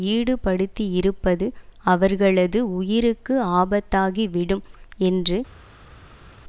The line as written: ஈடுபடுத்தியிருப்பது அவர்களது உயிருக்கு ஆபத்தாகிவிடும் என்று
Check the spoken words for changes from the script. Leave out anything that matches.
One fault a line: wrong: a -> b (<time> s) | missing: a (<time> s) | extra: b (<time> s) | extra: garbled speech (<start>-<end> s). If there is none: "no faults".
no faults